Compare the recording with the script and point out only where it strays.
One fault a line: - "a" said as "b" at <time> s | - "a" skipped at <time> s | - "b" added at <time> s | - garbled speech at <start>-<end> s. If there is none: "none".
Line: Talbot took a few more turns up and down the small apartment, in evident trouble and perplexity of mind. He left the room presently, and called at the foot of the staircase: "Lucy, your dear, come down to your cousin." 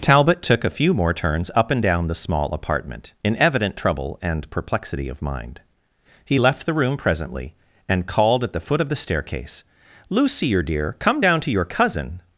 none